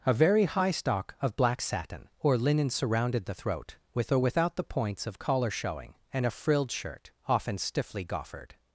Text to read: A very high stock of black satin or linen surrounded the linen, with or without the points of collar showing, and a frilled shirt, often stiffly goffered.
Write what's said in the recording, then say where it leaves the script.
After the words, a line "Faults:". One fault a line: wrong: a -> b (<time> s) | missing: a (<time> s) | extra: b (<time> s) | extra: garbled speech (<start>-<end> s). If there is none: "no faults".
A very high stock of black satin or linen surrounded the throat, with or without the points of collar showing, and a frilled shirt, often stiffly goffered.
Faults:
wrong: linen -> throat (3.3 s)